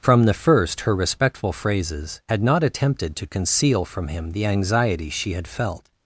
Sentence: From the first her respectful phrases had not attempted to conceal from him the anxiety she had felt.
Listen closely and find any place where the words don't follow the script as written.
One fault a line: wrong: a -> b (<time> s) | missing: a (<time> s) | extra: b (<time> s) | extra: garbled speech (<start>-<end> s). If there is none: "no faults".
no faults